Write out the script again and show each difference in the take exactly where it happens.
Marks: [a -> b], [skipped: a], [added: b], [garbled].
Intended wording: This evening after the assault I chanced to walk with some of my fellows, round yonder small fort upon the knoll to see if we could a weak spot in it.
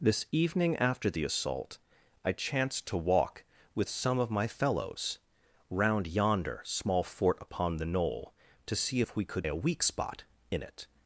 This evening after the assault I chanced to walk with some of my fellows, round yonder small fort upon the knoll to see if we could a weak spot in it.